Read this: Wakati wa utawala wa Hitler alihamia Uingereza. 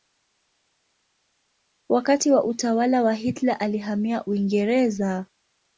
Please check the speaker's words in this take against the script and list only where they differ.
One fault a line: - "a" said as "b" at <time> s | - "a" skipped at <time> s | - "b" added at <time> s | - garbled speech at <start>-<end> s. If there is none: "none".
none